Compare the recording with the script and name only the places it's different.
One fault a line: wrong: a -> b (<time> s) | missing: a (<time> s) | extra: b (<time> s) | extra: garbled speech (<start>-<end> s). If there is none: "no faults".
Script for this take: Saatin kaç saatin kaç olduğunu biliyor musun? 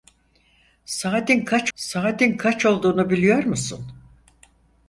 no faults